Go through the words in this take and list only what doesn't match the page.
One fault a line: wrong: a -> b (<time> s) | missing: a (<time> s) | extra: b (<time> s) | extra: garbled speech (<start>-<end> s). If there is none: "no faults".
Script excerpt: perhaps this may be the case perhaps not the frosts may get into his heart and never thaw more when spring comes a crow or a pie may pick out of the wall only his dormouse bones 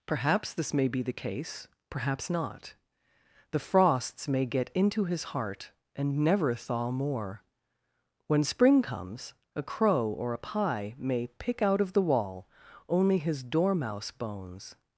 no faults